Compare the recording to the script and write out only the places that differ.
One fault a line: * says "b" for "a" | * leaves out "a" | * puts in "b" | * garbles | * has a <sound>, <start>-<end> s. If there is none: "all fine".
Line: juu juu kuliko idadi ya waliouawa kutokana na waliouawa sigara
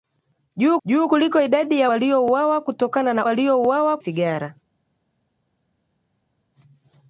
all fine